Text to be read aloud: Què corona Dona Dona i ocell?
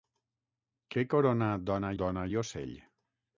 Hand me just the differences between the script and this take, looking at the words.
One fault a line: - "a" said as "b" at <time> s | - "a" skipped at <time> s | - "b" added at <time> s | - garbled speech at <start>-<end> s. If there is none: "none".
none